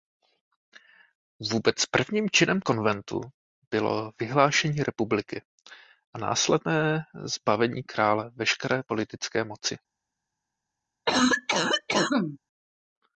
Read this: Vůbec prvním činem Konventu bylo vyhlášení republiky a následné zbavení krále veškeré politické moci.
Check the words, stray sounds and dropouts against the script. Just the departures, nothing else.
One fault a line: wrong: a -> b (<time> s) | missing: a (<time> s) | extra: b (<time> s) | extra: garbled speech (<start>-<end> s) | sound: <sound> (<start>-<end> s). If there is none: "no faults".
sound: cough (11.1-12.4 s)